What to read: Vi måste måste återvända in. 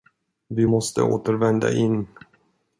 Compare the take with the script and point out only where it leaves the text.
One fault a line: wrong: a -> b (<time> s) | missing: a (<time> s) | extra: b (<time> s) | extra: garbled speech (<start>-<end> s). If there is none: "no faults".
missing: måste (1.0 s)